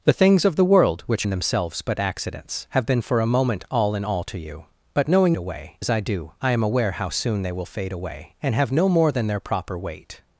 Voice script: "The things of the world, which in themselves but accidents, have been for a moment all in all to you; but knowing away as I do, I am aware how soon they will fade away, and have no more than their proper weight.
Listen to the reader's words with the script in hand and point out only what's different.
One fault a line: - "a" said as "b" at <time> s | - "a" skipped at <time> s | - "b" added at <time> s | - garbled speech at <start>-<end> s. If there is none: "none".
none